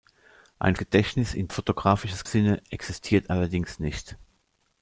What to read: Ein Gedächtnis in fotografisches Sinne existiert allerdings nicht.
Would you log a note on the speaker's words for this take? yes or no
no